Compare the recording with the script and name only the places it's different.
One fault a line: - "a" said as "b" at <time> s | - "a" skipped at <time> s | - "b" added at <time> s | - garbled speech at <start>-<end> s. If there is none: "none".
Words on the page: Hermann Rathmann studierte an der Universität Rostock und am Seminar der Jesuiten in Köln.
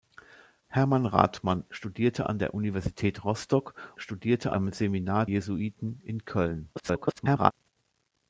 - "und" said as "studierte" at 4.0 s
- "der" skipped at 5.2 s
- garbled speech at 6.8-7.5 s